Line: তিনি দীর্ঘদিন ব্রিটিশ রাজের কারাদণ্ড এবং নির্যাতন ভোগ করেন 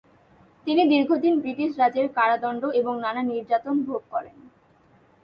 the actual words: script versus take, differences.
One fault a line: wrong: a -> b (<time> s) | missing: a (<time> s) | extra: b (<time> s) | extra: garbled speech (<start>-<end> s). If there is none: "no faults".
extra: নানা (3.0 s)